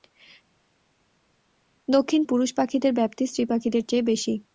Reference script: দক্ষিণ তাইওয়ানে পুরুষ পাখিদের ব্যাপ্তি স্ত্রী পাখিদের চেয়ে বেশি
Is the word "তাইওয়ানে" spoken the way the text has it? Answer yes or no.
no